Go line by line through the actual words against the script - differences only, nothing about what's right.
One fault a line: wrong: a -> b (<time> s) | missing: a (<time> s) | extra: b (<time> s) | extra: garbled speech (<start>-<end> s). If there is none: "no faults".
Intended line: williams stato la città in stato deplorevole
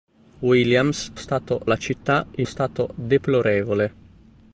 no faults